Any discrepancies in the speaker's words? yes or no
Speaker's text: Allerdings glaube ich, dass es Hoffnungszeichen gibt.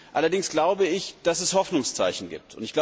no